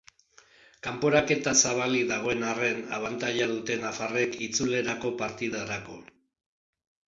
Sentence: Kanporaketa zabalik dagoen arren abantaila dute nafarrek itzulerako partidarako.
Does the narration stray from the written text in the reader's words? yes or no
no